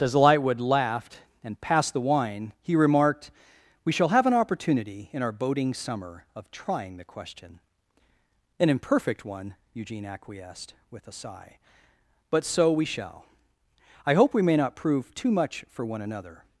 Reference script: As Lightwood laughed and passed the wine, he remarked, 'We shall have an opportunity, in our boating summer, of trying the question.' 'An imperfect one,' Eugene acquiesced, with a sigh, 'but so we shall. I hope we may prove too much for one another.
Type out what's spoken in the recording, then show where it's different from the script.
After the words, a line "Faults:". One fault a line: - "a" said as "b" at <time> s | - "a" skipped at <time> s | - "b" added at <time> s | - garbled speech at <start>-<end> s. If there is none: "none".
As Lightwood laughed and passed the wine, he remarked, 'We shall have an opportunity, in our boating summer, of trying the question.' 'An imperfect one,' Eugene acquiesced, with a sigh, 'but so we shall. I hope we may not prove too much for one another.
Faults:
- "not" added at 14.6 s